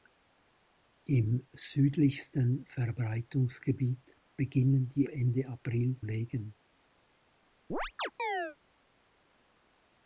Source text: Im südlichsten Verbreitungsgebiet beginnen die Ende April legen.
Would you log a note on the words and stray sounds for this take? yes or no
yes